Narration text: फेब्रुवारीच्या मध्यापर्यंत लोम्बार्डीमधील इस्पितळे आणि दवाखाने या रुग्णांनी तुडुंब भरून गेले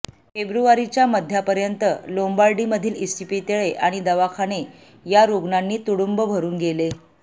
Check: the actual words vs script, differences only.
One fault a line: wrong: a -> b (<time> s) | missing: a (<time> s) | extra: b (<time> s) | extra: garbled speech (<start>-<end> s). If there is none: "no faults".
no faults